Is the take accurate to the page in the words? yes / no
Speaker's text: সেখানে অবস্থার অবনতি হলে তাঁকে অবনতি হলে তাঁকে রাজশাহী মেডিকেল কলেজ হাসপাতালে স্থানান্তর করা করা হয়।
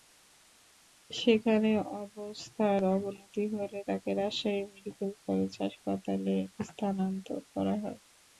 no